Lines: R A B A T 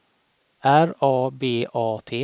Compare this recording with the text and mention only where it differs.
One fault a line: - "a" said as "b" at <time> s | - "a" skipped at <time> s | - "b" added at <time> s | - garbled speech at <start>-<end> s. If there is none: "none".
none